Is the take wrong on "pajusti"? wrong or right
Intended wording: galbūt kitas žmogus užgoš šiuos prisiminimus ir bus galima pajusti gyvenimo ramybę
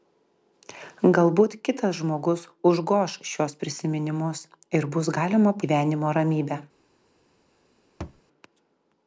wrong